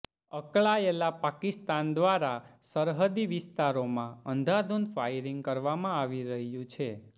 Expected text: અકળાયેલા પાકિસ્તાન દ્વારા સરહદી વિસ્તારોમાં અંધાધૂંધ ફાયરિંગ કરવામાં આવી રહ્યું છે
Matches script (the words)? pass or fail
pass